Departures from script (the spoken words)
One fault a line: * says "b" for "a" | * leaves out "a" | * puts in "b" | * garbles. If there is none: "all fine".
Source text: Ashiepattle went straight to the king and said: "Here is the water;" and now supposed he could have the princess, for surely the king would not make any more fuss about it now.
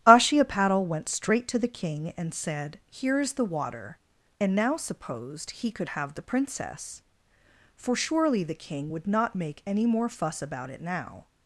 all fine